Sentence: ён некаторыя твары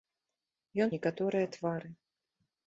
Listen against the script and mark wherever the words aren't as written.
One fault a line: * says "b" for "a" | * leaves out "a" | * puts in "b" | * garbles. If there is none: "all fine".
all fine